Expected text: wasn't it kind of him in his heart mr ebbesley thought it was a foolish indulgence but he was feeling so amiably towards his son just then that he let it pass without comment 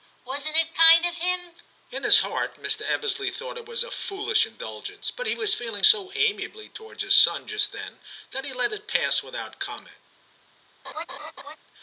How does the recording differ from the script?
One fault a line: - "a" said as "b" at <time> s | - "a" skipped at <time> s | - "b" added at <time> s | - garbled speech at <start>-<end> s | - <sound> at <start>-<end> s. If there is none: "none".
- laugh at 10.8-11.6 s